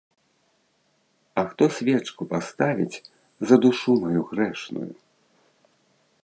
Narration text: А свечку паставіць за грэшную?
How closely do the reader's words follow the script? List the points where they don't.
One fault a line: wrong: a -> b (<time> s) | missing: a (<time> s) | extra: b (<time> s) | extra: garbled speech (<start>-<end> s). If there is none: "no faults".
extra: хто (1.5 s)
extra: душу маю (3.7 s)